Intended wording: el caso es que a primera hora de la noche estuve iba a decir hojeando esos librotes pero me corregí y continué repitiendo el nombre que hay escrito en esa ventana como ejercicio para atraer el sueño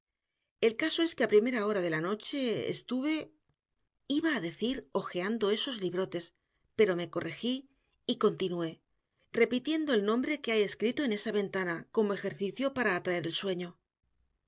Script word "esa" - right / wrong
right